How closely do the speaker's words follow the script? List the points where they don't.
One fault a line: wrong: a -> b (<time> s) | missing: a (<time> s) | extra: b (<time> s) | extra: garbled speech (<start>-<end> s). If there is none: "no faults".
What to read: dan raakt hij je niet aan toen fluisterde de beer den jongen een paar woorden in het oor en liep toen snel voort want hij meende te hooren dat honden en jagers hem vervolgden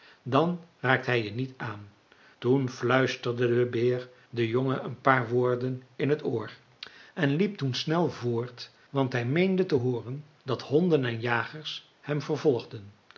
no faults